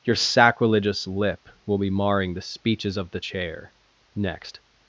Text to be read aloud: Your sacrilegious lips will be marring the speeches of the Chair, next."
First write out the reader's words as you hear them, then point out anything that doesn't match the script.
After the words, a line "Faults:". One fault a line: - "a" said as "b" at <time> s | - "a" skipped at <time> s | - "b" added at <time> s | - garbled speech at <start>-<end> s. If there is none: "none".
Your sacrilegious lip will be marring the speeches of the Chair, next."
Faults:
- "lips" said as "lip" at 1.1 s